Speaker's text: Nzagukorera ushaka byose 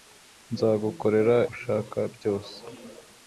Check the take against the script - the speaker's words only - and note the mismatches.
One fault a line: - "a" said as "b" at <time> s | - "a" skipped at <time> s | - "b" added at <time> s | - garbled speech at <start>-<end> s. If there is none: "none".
none